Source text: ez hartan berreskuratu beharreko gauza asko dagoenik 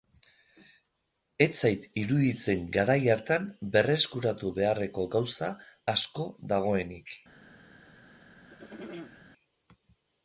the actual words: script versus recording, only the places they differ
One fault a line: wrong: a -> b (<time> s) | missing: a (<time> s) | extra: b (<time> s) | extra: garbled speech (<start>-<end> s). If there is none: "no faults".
extra: zait iruditzen garai (1.6 s)